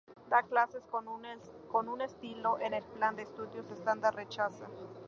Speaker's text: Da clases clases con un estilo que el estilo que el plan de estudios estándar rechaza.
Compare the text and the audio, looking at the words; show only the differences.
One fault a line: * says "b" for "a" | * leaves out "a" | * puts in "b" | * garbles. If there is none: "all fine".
* leaves out "clases"
* leaves out "estilo que el"